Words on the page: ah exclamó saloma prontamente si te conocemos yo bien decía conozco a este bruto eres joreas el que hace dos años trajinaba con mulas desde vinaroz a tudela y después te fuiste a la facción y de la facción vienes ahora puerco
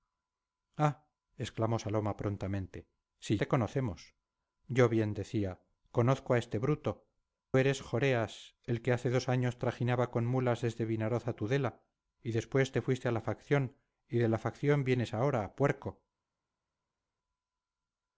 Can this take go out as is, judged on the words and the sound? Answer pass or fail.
pass